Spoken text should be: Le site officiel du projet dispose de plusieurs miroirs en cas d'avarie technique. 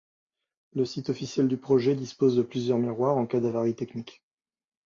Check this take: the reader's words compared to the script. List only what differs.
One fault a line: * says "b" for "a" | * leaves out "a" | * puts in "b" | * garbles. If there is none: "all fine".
all fine